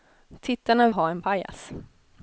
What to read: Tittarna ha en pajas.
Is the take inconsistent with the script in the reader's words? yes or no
no